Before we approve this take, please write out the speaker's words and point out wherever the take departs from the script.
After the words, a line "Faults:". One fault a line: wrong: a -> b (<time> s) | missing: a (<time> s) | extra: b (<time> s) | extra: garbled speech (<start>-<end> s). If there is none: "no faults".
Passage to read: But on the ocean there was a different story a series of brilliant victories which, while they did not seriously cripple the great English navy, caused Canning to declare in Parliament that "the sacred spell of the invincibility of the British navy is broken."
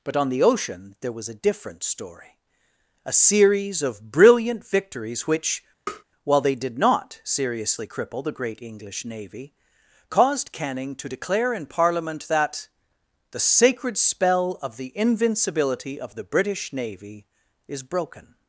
But on the ocean there was a different story a series of brilliant victories which, while they did not seriously cripple the great English navy, caused Canning to declare in Parliament that "the sacred spell of the invincibility of the British navy is broken."
Faults:
no faults